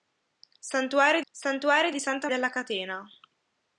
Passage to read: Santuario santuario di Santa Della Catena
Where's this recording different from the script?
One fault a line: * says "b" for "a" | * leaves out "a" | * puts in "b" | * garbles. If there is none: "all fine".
all fine